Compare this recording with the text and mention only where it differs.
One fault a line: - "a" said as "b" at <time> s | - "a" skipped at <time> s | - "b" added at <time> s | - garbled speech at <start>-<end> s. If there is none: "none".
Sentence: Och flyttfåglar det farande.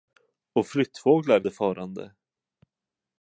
none